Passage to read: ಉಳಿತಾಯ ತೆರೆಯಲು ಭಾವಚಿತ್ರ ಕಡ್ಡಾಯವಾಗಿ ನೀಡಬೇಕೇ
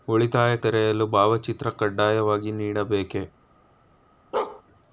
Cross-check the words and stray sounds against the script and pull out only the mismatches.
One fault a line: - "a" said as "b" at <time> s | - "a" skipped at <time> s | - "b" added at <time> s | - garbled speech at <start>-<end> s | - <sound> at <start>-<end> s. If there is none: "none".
- bark at 4.3-4.6 s